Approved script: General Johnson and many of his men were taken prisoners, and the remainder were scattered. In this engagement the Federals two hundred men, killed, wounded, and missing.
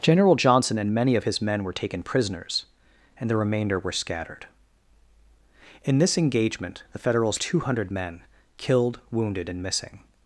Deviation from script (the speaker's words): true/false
false